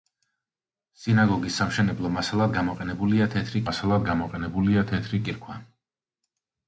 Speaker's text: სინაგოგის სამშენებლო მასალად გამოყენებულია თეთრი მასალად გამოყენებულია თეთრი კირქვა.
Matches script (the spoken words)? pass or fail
pass